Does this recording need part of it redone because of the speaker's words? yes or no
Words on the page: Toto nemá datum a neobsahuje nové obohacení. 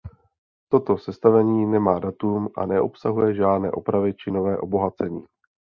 yes